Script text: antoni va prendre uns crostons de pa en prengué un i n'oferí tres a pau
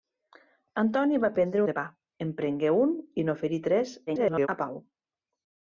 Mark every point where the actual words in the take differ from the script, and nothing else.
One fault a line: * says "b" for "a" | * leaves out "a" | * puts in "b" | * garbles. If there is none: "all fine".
* leaves out "uns crostons"
* garbles